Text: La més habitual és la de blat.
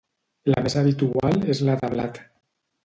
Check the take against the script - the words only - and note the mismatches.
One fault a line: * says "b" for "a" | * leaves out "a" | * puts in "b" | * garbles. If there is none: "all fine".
all fine